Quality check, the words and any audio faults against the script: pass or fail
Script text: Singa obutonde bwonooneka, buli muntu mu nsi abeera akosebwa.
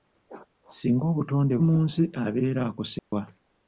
fail